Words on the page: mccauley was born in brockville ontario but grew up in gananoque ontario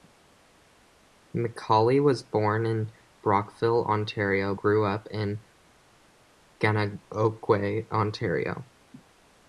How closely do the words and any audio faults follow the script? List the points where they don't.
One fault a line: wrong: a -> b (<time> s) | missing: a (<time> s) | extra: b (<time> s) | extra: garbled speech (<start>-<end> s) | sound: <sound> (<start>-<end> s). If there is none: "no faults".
missing: but (4.5 s)